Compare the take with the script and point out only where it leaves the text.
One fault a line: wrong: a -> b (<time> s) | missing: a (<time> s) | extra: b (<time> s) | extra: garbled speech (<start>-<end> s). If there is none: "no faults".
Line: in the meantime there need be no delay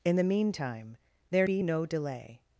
missing: need (1.5 s)